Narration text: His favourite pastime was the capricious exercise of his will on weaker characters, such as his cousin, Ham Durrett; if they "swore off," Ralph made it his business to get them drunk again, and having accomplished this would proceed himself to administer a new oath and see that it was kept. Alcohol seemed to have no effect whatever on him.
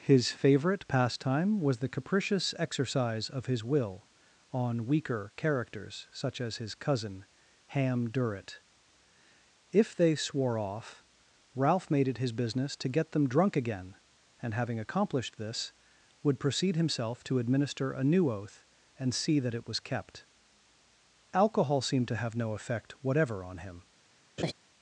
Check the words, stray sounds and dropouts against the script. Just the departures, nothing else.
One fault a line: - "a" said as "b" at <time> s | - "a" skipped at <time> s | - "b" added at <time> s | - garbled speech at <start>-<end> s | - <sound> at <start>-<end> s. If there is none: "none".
- laugh at 24.4-24.5 s